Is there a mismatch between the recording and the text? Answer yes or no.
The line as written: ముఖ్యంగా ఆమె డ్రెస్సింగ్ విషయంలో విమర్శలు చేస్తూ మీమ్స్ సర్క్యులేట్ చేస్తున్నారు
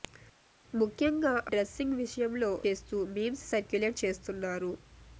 yes